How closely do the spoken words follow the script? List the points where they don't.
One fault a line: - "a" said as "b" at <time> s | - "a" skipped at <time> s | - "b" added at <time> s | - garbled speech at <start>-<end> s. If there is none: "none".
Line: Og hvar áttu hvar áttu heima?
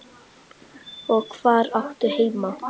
- "hvar áttu" skipped at 2.1 s